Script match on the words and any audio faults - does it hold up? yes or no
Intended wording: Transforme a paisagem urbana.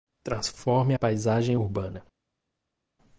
yes